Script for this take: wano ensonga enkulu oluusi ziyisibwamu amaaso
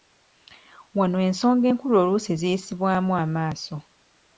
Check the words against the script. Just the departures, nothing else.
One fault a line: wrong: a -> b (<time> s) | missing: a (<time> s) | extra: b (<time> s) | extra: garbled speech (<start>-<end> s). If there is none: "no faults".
no faults